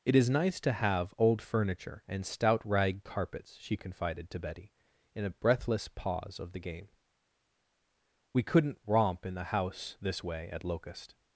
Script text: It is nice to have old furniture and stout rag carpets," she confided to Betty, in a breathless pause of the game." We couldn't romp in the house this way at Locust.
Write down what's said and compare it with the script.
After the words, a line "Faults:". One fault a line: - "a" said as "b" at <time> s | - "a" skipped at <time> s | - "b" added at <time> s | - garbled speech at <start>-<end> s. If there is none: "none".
It is nice to have old furniture and stout rag carpets," she confided to Betty, in a breathless pause of the game." We couldn't romp in the house this way at Locust.
Faults:
none